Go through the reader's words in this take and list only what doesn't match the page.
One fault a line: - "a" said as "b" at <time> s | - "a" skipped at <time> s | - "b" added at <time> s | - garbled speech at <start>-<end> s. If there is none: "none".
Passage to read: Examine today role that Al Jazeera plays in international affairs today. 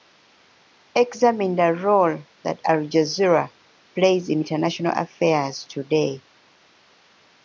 - "today" said as "the" at 1.6 s